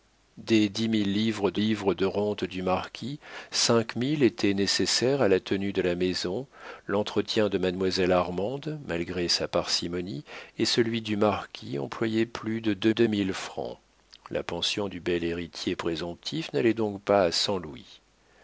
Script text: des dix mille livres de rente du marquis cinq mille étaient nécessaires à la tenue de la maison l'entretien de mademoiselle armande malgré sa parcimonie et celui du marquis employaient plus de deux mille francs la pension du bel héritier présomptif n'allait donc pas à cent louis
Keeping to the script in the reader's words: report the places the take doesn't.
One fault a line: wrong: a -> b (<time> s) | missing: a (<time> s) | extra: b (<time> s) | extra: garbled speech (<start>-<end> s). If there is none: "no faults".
extra: livres de (1.6 s)
extra: deux (12.9 s)